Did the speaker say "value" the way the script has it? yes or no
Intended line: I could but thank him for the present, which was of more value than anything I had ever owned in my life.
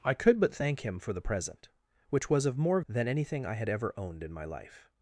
no